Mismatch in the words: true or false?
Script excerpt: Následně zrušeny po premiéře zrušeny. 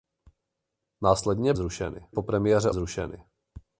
false